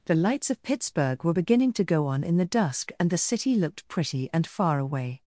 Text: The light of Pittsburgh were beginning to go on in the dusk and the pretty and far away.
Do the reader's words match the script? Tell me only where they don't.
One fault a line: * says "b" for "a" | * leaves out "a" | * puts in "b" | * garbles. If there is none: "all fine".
* says "lights" for "light"
* puts in "city looked"